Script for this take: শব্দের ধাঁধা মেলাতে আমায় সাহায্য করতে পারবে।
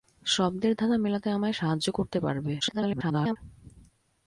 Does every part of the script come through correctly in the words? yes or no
no